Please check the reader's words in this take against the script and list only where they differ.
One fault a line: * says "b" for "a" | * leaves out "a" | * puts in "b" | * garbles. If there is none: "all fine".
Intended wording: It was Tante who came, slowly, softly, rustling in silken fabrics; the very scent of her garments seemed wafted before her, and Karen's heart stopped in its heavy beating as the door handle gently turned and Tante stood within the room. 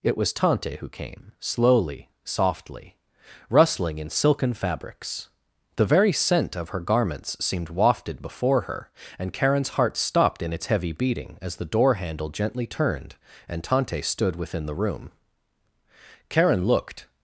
* puts in "Karen looked"